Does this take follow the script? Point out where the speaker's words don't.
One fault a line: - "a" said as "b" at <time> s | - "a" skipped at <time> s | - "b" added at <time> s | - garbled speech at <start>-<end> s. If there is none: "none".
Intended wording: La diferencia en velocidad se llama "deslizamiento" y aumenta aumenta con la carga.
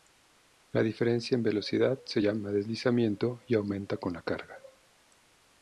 - "aumenta" skipped at 4.0 s